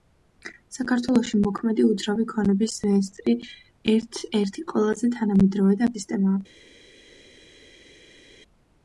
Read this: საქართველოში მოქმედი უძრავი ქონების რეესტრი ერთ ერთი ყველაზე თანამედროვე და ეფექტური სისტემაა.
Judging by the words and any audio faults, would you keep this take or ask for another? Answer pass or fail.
fail